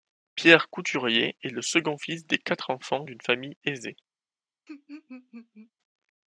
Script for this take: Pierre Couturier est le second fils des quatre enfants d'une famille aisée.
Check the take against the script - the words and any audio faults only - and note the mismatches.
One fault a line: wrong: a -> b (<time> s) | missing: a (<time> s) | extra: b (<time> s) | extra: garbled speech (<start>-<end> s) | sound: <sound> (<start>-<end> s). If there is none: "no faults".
sound: laugh (4.7-5.7 s)